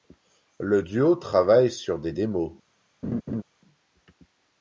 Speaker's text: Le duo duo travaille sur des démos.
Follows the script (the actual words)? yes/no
no